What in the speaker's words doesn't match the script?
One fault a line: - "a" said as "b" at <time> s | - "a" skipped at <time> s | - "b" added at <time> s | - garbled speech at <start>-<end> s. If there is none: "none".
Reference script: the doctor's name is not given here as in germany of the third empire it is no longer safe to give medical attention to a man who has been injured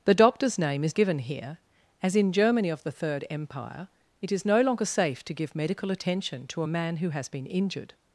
- "not" skipped at 1.0 s